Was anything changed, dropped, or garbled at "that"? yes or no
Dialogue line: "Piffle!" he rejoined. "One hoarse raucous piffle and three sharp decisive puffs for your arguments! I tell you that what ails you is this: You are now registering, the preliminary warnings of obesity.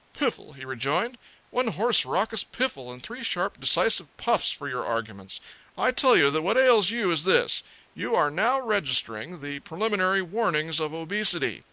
no